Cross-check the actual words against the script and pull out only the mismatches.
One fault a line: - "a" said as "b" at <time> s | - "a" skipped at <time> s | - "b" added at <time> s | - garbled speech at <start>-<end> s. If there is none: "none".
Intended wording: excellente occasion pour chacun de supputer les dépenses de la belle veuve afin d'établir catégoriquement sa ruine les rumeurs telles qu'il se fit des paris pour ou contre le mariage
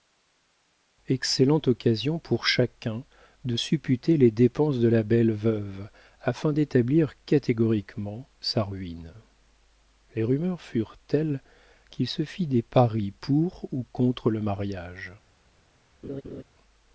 - "furent" added at 10.6 s